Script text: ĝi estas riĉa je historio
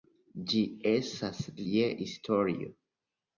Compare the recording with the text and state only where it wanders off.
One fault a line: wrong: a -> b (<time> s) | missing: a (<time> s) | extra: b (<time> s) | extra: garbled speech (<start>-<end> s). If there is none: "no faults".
missing: riĉa (1.4 s)